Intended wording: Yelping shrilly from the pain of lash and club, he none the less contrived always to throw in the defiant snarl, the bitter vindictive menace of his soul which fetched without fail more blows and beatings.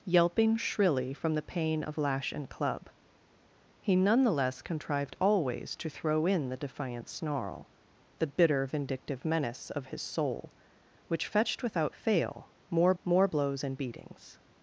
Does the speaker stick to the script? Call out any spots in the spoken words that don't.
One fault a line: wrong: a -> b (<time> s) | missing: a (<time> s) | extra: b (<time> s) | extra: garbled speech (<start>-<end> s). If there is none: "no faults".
extra: more (13.0 s)